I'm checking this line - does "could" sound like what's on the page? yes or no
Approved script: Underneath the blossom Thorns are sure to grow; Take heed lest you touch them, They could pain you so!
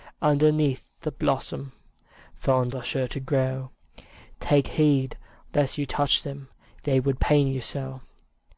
no